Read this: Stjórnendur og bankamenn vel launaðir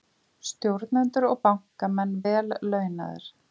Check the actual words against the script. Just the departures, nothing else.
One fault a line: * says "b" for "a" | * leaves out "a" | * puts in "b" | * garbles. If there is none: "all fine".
all fine